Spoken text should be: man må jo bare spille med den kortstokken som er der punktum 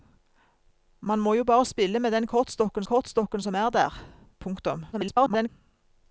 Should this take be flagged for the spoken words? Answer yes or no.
yes